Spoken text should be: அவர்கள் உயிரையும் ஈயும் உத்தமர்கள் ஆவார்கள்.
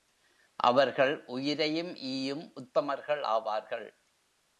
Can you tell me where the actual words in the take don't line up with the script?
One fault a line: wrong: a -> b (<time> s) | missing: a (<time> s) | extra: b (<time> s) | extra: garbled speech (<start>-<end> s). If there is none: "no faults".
no faults